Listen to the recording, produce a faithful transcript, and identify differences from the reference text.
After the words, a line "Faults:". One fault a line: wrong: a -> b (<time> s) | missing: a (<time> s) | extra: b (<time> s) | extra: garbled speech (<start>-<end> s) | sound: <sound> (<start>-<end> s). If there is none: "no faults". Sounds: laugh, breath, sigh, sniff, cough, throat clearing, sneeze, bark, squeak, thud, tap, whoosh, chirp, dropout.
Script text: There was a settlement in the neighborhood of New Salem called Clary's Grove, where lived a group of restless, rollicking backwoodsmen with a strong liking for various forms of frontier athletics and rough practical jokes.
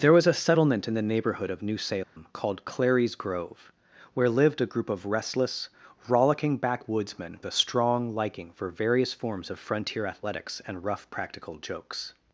There was a settlement in the neighborhood of New Salem called Clary's Grove, where lived a group of restless, rollicking backwoodsmen a strong liking for various forms of frontier athletics and rough practical jokes.
Faults:
sound: dropout (2.0-2.2 s)
missing: with (7.4 s)